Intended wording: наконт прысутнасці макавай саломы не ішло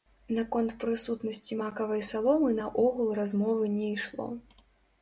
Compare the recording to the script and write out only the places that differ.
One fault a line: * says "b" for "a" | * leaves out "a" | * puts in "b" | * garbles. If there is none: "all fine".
* puts in "наогул размовы"